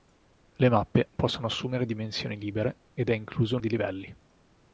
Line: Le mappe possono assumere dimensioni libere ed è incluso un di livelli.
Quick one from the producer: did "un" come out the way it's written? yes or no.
yes